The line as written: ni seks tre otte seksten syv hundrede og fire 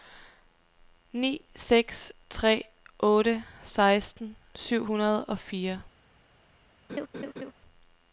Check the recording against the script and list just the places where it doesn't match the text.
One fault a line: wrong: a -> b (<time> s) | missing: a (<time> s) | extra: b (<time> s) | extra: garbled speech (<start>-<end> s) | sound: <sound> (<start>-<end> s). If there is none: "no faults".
sound: laugh (6.9-7.5 s)